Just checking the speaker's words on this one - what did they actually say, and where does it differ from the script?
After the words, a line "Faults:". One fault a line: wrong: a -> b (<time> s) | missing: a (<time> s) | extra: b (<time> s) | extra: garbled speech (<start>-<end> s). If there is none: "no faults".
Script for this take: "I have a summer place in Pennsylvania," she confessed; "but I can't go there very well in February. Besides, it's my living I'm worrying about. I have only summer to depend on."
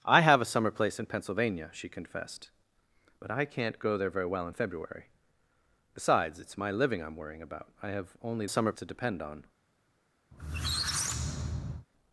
"I have a summer place in Pennsylvania," she confessed; "but I can't go there very well in February. Besides, it's my living I'm worrying about. I have only summer to depend on."
Faults:
no faults